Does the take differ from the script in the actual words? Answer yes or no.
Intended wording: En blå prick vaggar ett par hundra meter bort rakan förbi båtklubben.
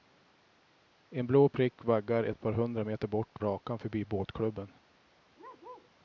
no